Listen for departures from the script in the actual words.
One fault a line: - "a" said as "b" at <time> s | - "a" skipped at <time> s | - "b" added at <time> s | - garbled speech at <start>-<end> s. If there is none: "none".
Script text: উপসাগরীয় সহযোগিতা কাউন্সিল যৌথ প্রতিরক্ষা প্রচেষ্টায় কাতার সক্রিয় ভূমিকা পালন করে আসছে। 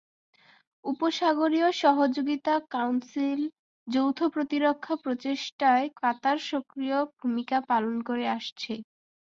none